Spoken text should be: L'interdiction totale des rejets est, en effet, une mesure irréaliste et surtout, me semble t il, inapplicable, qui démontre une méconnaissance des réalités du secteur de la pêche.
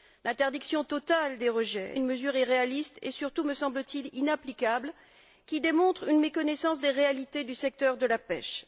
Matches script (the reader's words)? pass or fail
fail